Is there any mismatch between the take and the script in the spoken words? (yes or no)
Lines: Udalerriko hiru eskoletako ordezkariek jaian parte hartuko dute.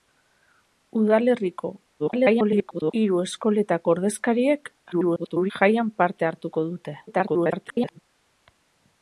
yes